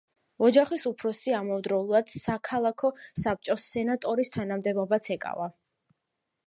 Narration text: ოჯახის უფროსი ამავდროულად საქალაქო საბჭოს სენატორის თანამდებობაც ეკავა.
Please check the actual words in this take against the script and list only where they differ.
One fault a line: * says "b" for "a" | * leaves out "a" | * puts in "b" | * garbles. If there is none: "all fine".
all fine